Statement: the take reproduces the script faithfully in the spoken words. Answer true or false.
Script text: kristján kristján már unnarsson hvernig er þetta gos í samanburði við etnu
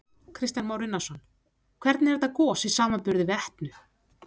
false